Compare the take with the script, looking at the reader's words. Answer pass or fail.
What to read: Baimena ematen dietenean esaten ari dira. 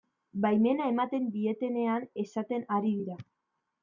pass